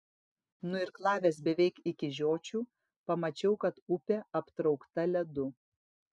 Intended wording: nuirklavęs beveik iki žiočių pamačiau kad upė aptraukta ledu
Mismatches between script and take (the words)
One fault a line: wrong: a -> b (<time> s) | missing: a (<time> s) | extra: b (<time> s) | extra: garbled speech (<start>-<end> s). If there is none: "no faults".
no faults